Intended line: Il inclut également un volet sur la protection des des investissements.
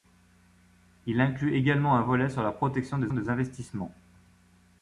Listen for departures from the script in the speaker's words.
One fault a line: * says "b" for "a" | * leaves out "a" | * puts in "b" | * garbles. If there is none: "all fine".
all fine